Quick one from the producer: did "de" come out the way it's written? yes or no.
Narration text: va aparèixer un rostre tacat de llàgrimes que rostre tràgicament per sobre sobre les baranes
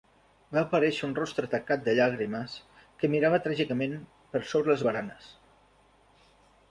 yes